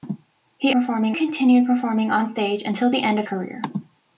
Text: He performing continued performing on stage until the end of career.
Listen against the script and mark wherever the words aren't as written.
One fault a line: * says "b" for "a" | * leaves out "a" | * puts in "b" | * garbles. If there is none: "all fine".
all fine